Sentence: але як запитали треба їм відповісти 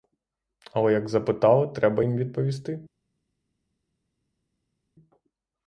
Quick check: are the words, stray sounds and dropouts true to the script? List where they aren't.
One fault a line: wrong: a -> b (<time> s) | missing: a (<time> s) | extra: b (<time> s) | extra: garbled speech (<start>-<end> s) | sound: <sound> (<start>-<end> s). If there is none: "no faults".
no faults